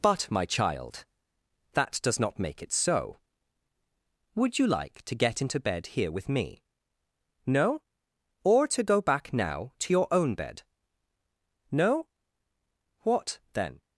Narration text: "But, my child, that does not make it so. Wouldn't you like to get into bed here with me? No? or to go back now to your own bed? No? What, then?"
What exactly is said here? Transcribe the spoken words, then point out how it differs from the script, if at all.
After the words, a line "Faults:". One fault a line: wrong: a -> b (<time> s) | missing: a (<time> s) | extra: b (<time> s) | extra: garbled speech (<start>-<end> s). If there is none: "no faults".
"But, my child, that does not make it so. Would you like to get into bed here with me? No? or to go back now to your own bed? No? What, then?"
Faults:
wrong: Wouldn't -> Would (4.3 s)